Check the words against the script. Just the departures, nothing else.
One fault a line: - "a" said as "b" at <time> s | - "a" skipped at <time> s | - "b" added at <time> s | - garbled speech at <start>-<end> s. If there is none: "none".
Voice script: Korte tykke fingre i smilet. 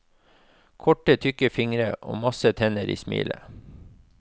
- "og masse tenner" added at 2.0 s